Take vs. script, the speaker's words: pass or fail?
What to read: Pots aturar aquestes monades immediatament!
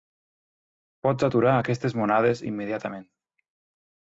pass